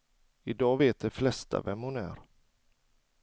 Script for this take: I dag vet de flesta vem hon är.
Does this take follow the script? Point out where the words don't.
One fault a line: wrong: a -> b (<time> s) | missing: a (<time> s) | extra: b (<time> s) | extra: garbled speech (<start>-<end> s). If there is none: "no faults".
no faults